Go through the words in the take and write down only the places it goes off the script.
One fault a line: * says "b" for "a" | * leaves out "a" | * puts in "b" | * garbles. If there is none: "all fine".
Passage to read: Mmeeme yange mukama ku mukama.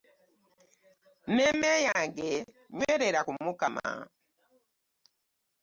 * says "nywerera" for "mukama"